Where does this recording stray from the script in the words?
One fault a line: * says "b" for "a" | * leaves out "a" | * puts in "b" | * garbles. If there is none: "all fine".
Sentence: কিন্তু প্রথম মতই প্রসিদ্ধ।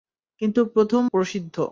* leaves out "মতই"